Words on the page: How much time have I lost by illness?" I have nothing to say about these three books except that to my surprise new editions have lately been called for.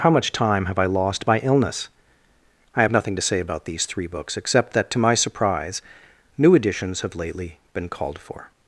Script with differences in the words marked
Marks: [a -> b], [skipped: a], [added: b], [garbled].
How much time have I lost by illness?" I have nothing to say about these three books except that to my surprise new editions have lately been called for.